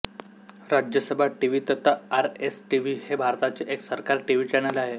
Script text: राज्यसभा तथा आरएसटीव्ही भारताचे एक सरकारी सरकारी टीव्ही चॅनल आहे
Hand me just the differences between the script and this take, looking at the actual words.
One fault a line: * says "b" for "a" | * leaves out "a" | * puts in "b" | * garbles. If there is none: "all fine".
* puts in "टीव्ही"
* puts in "हे"
* leaves out "सरकारी"